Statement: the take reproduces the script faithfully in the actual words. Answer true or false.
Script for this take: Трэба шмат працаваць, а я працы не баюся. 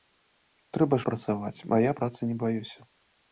false